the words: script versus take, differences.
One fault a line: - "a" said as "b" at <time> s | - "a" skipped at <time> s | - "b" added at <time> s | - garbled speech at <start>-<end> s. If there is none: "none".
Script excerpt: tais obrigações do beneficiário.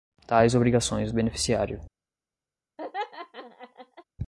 none